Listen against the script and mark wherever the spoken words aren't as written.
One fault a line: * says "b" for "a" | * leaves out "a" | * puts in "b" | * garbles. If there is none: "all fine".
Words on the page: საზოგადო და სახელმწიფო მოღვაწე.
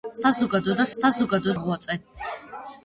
* says "საზოგადო" for "სახელმწიფო"